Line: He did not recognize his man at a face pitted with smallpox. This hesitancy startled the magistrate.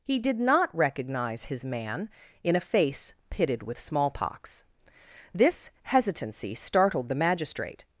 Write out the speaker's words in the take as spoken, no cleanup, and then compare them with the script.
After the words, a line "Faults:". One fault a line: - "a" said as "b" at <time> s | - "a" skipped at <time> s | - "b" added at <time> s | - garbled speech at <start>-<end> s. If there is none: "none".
He did not recognize his man in a face pitted with smallpox. This hesitancy startled the magistrate.
Faults:
- "at" said as "in" at 2.4 s